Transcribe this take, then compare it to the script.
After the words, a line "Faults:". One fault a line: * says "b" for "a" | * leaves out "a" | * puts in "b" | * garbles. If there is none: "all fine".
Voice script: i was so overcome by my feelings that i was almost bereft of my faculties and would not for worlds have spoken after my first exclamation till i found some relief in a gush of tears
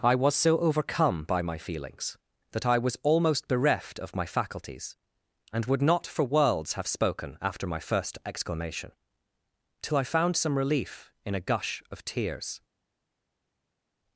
i was so overcome by my feelings that i was almost bereft of my faculties and would not for worlds have spoken after my first exclamation till i found some relief in a gush of tears
Faults:
all fine